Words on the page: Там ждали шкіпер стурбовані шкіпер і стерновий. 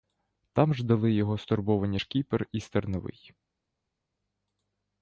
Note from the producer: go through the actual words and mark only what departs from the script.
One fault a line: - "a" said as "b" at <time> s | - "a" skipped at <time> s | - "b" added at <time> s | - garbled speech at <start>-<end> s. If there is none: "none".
- "шкіпер" said as "його" at 1.1 s